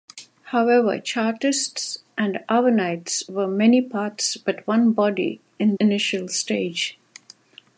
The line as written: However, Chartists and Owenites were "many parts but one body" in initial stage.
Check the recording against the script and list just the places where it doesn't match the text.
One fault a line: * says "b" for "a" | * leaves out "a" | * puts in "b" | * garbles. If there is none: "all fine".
all fine